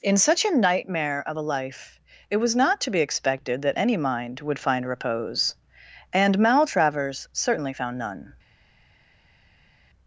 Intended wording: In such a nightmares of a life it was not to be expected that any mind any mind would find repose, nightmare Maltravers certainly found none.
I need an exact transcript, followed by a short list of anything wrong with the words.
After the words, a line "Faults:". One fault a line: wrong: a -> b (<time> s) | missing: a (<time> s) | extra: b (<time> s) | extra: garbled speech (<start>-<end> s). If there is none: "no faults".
In such a nightmare of a life it was not to be expected that any mind would find repose, and Maltravers certainly found none.
Faults:
wrong: nightmares -> nightmare (0.6 s)
missing: any mind (4.4 s)
wrong: nightmare -> and (6.1 s)